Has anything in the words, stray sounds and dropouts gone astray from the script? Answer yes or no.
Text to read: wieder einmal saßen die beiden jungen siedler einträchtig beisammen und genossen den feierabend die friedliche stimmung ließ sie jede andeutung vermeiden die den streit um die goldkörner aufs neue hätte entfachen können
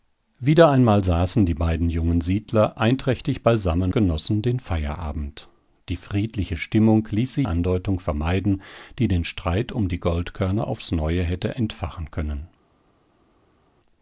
yes